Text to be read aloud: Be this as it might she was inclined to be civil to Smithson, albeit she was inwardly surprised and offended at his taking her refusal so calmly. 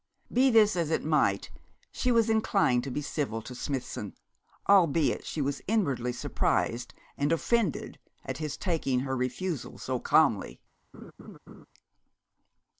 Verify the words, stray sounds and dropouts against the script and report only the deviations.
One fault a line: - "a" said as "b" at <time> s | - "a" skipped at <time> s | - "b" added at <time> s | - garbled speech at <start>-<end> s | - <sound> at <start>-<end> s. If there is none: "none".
- laugh at 10.9-11.7 s